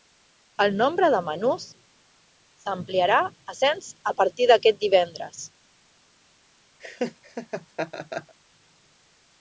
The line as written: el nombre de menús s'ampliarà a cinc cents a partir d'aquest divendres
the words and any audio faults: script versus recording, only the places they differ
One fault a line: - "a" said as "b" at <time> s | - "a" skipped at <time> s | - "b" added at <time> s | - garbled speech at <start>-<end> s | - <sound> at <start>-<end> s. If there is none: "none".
- "cinc" skipped at 3.6 s
- laugh at 6.8-8.4 s